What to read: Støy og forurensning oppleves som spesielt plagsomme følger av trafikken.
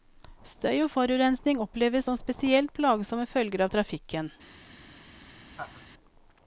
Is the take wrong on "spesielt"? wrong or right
right